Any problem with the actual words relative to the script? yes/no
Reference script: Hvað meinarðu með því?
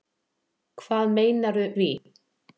yes